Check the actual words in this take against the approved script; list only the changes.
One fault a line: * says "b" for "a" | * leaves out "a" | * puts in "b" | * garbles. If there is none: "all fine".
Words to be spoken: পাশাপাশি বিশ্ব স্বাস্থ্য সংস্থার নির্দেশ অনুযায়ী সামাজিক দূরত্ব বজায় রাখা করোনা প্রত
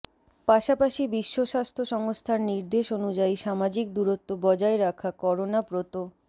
all fine